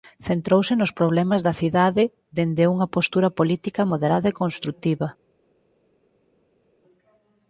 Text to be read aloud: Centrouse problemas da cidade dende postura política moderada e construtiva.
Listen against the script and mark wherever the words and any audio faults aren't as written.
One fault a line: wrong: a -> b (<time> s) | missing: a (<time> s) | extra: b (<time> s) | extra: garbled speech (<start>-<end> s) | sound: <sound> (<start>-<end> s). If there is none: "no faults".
extra: nos (0.8 s)
extra: unha (2.7 s)